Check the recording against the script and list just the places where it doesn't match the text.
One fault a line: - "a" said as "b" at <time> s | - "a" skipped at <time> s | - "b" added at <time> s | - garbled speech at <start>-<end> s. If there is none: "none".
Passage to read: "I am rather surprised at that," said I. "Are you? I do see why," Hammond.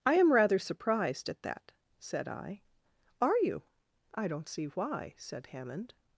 - "do" said as "don't" at 4.3 s
- "said" added at 5.2 s